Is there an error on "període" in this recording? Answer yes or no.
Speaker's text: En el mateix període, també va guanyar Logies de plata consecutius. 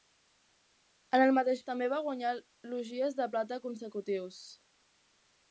yes